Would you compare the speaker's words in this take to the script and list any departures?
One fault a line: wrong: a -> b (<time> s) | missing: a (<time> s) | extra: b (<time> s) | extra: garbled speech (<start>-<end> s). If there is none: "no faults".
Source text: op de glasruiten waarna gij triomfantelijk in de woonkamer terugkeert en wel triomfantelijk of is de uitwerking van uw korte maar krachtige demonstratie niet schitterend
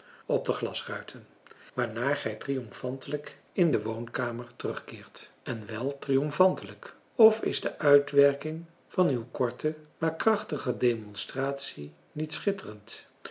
no faults